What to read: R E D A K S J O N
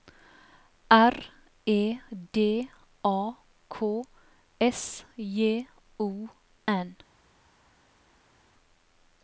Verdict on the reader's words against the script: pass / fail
pass